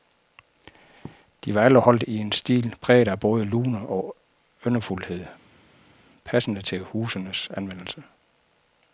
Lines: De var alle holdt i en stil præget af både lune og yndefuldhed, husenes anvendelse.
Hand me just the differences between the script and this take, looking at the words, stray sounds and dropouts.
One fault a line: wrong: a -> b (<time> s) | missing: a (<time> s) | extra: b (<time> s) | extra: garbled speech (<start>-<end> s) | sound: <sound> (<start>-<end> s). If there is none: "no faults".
extra: passende til (6.2 s)